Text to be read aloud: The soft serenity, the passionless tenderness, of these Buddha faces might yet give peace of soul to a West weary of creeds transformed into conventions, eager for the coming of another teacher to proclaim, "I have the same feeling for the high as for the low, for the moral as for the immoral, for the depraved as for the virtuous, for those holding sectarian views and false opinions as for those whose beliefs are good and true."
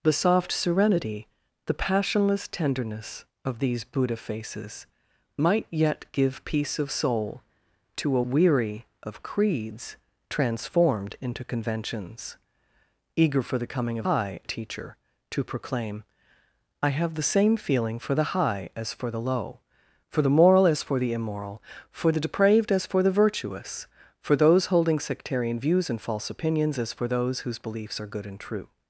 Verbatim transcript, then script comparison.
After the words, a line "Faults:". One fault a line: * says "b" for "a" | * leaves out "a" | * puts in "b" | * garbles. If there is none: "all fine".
The soft serenity, the passionless tenderness, of these Buddha faces might yet give peace of soul to a Weary of creeds transformed into conventions, eager for the coming of high teacher to proclaim, "I have the same feeling for the high as for the low, for the moral as for the immoral, for the depraved as for the virtuous, for those holding sectarian views and false opinions as for those whose beliefs are good and true."
Faults:
* leaves out "West"
* says "high" for "another"